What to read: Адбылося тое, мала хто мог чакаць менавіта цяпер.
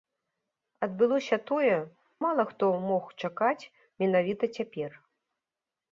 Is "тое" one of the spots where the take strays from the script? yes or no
no